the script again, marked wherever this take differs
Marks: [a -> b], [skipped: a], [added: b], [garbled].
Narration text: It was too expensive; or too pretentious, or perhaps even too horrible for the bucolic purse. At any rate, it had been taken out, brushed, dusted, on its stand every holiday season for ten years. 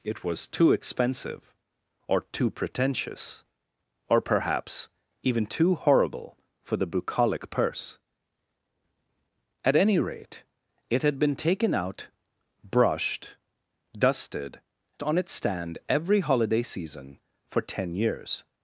It was too expensive; or too pretentious, or perhaps even too horrible for the bucolic purse. At any rate, it had been taken out, brushed, dusted, on its stand every holiday season for ten years.